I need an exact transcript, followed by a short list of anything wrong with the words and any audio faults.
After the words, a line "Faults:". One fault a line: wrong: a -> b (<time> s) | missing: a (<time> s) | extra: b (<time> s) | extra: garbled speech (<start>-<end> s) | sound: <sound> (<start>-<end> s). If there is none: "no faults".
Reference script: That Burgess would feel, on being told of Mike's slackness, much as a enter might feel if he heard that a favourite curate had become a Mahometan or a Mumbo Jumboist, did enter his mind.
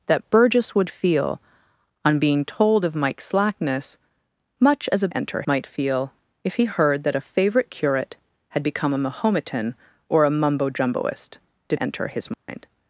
That Burgess would feel, on being told of Mike's slackness, much as a enter might feel if he heard that a favourite curate had become a Mahometan or a Mumbo Jumboist, did enter his mind.
Faults:
sound: dropout (12.3-12.5 s)